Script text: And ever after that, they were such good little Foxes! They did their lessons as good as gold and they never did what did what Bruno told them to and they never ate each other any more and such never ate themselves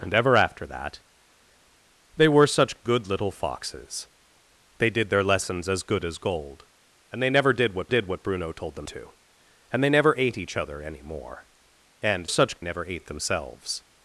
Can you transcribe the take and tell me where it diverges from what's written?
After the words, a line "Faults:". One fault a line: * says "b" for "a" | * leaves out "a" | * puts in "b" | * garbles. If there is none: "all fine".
And ever after that, they were such good little Foxes! They did their lessons as good as gold and they never did what did what Bruno told them to and they never ate each other any more and such never ate themselves
Faults:
all fine